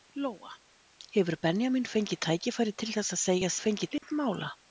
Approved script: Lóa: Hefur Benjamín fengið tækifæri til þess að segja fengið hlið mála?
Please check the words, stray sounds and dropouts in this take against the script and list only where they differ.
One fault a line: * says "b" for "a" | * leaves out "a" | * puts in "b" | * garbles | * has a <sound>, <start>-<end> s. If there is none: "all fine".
* has a dropout, 4.0-4.0 s